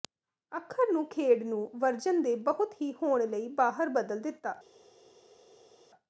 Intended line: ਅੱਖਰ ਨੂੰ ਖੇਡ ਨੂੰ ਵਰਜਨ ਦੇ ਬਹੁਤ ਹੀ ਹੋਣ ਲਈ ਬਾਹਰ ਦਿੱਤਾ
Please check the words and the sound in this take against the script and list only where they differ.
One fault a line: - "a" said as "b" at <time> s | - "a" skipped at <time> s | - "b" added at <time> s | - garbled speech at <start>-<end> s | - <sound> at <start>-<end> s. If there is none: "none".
- "ਬਦਲ" added at 3.9 s